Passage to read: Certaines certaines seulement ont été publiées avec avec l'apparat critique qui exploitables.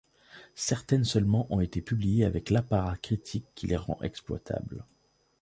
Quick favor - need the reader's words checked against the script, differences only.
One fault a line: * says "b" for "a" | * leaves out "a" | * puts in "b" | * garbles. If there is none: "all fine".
* leaves out "certaines"
* leaves out "avec"
* puts in "les rend"